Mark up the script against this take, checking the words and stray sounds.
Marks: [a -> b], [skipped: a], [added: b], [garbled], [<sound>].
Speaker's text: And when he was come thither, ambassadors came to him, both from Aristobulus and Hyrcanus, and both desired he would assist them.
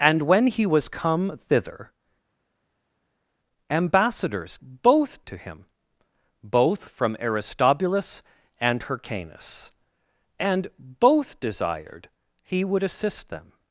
And when he was come thither, ambassadors [came -> both] to him, both from Aristobulus and Hyrcanus, and both desired he would assist them.